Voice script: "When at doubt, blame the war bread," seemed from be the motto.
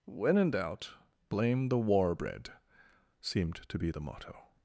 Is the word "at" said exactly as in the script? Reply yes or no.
no